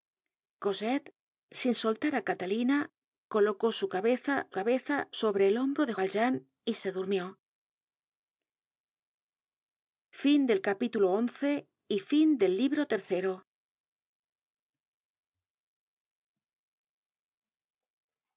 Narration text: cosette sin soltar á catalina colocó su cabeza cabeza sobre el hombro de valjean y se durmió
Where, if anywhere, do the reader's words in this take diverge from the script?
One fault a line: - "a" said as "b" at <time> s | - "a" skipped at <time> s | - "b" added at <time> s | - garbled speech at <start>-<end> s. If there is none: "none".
none